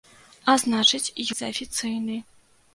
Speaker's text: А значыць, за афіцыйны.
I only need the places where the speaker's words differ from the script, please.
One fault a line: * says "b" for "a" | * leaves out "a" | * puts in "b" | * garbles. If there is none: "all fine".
all fine